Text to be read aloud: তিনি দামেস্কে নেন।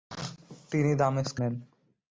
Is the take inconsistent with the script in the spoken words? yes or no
no